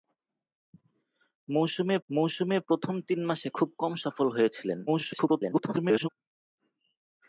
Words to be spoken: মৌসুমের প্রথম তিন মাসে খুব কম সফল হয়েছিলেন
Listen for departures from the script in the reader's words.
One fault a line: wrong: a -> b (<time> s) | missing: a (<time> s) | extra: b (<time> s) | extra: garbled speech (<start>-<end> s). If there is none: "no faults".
extra: মৌসুমের (2.1 s)
extra: garbled speech (4.9-6.1 s)